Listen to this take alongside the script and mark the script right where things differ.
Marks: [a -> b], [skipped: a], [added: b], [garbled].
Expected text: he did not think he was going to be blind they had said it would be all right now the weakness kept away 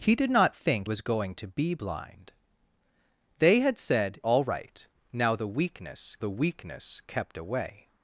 he did not think [skipped: he] was going to be blind they had said [skipped: it would be] all right now the weakness [added: the weakness] kept away